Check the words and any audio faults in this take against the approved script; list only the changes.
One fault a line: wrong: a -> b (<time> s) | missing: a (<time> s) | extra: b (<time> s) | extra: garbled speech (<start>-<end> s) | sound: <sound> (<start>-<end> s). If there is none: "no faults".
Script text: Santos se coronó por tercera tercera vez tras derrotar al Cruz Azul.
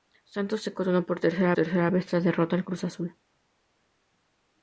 no faults